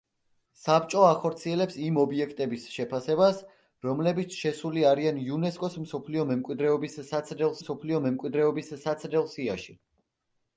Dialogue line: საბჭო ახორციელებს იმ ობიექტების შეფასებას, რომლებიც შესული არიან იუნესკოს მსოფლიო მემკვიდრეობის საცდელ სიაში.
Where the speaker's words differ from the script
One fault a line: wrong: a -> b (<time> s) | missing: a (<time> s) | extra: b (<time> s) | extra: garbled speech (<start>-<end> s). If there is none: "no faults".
extra: მსოფლიო მემკვიდრეობის საცდელ (7.6 s)